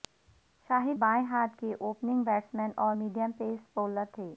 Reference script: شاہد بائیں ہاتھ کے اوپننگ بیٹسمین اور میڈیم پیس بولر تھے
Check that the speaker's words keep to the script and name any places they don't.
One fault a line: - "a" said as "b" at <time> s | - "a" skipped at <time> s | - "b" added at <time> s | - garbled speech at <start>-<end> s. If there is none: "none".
none